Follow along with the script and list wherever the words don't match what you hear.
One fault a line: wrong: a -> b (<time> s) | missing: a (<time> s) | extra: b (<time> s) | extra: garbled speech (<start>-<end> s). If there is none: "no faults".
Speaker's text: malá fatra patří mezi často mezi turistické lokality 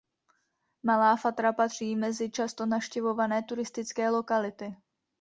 wrong: mezi -> navštěvované (2.6 s)